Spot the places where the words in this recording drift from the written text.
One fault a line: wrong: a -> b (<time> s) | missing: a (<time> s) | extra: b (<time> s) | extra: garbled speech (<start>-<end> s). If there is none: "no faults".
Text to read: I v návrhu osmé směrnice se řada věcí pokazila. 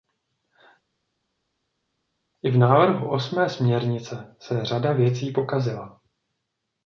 no faults